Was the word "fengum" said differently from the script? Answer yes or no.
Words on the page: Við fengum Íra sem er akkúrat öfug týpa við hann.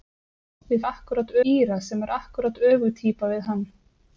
yes